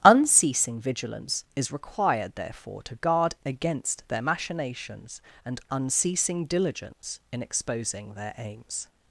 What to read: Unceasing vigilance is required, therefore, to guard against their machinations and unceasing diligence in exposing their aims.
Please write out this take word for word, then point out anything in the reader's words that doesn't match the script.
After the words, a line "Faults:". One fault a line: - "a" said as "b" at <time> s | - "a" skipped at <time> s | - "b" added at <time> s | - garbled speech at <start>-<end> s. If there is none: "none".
Unceasing vigilance is required, therefore, to guard against their machinations and unceasing diligence in exposing their aims.
Faults:
none